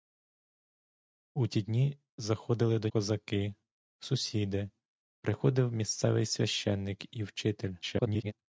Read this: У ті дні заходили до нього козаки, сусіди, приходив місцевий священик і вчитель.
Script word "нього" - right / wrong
wrong